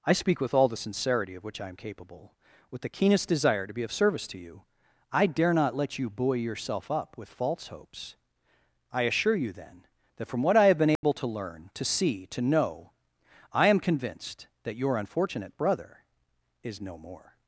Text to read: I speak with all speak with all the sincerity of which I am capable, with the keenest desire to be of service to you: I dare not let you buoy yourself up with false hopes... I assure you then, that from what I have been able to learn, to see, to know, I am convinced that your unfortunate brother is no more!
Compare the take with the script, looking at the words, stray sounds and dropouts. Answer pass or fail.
fail